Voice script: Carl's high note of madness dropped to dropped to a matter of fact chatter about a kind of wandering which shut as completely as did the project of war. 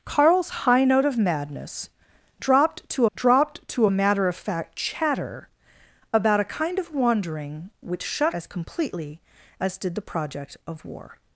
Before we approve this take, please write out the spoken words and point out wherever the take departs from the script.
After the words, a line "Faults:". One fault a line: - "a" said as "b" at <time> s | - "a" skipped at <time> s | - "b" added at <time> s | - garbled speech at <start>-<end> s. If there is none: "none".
Carl's high note of madness dropped to dropped to a matter of fact chatter about a kind of wandering which shut as completely as did the project of war.
Faults:
none